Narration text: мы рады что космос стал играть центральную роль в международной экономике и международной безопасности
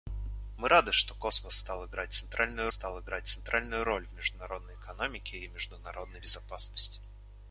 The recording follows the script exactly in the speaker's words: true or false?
false